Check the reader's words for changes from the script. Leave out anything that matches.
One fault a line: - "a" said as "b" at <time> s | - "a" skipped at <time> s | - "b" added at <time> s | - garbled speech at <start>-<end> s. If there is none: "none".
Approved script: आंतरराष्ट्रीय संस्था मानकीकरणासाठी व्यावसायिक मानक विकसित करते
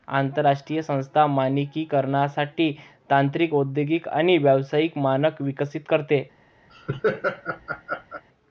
- "तांत्रिक औद्योगिक आणि" added at 3.1 s